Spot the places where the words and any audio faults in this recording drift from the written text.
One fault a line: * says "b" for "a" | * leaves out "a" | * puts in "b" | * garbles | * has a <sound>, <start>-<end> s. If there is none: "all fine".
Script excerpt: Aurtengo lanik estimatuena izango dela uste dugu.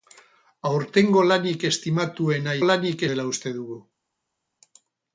* says "lanik" for "izango"